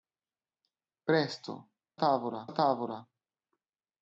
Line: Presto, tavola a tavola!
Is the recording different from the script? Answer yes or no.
no